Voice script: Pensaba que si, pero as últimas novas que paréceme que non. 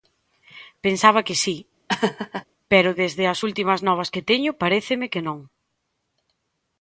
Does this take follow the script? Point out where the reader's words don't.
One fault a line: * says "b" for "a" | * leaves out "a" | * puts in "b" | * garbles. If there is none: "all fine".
* puts in "desde"
* puts in "teño"